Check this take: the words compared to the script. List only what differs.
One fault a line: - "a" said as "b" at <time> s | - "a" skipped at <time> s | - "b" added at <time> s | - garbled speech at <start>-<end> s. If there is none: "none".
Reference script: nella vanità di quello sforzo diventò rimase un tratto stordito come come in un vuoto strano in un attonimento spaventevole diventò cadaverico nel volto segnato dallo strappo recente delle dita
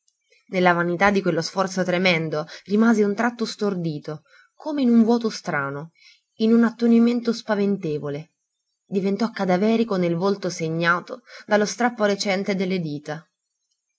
- "diventò" said as "tremendo" at 1.8 s
- "come" skipped at 4.8 s